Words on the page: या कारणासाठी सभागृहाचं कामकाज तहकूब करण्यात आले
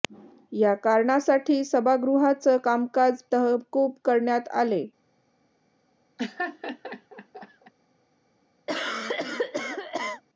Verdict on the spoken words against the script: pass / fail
pass